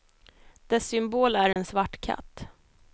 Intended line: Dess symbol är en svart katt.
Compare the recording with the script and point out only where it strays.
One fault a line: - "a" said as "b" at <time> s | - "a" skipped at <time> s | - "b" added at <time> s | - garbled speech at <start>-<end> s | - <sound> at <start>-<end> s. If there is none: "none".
- dropout at 1.5-1.6 s